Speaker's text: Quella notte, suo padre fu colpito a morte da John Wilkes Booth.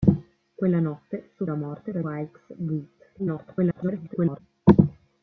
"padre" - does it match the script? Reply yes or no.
no